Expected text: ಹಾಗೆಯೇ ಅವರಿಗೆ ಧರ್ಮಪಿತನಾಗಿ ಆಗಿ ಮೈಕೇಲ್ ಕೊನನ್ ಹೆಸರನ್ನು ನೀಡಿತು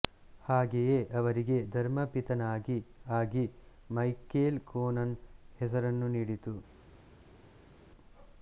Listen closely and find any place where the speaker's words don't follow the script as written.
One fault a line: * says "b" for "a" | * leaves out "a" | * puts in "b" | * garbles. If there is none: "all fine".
all fine